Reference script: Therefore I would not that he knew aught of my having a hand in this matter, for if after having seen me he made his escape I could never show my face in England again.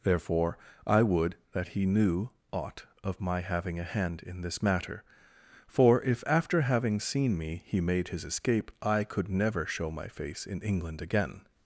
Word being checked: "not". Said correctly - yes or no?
no